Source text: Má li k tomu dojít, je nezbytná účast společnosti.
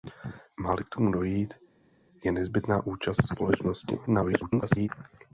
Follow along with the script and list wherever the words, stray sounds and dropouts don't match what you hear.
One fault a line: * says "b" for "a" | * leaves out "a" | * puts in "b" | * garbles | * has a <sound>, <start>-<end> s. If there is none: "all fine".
* garbles